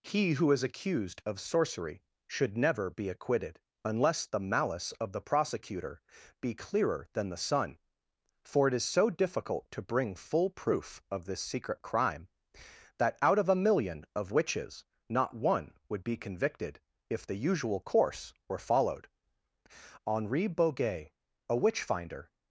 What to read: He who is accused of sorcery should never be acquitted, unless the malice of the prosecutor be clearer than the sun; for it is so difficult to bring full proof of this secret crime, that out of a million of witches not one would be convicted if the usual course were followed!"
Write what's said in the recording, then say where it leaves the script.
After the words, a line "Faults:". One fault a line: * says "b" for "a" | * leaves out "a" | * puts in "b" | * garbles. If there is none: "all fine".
He who is accused of sorcery should never be acquitted, unless the malice of the prosecutor be clearer than the sun; for it is so difficult to bring full proof of this secret crime, that out of a million of witches not one would be convicted if the usual course were followed!" Henri Boguet, a witch finder
Faults:
* puts in "Henri Boguet a witch finder"